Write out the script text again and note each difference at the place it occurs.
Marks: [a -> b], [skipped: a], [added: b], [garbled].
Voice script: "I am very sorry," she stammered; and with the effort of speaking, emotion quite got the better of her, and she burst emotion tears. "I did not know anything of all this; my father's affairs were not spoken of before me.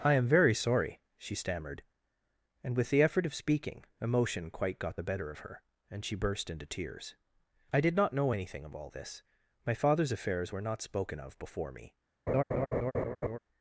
"I am very sorry," she stammered; and with the effort of speaking, emotion quite got the better of her, and she burst [emotion -> into] tears. "I did not know anything of all this; my father's affairs were not spoken of before me.